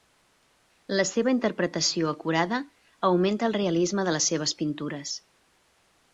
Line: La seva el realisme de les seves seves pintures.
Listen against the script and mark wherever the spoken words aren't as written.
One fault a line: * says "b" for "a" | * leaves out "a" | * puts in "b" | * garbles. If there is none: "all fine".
* puts in "interpretació acurada augmenta"
* leaves out "seves"